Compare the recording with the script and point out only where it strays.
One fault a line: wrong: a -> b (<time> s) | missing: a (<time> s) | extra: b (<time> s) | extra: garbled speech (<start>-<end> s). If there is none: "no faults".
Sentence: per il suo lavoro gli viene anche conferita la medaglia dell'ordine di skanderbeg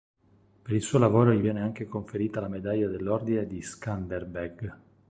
no faults